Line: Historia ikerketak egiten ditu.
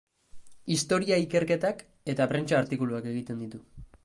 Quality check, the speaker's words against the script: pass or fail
fail